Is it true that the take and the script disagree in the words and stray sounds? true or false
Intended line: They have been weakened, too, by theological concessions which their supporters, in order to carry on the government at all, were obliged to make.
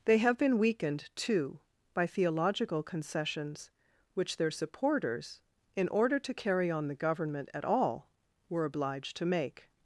false